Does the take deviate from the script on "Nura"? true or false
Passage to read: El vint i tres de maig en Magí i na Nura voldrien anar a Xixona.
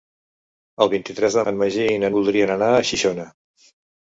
true